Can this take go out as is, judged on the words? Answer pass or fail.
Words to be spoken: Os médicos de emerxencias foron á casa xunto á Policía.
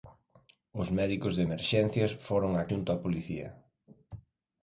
fail